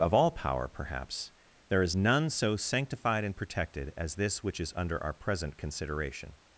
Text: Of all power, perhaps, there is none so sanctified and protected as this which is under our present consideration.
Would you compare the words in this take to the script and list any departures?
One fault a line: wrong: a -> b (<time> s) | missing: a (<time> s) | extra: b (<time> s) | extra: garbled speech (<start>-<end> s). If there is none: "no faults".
no faults